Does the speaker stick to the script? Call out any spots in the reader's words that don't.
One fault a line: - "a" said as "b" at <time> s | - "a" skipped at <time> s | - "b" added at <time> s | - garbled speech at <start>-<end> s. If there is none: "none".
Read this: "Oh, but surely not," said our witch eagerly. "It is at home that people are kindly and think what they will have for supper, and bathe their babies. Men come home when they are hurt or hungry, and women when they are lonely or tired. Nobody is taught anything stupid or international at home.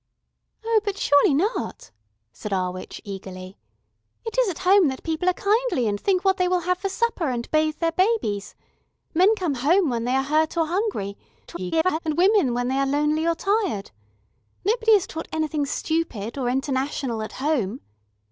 - garbled speech at 11.5-12.0 s